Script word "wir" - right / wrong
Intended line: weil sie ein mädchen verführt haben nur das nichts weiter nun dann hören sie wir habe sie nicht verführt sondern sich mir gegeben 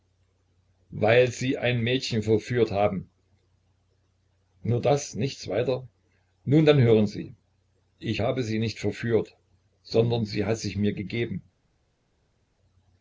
wrong